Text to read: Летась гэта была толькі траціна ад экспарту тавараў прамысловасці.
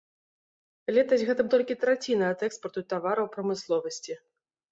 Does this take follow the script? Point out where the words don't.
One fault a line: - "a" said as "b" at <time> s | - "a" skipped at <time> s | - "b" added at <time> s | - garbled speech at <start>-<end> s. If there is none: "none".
- "была" skipped at 1.4 s